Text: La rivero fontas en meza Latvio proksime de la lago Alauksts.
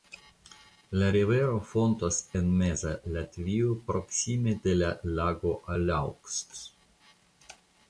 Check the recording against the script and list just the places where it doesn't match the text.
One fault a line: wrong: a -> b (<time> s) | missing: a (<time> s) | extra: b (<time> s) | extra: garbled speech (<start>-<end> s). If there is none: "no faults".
no faults